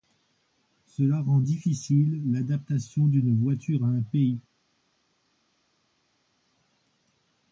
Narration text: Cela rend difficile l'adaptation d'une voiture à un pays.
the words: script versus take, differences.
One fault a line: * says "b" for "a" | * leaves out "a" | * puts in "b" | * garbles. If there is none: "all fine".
all fine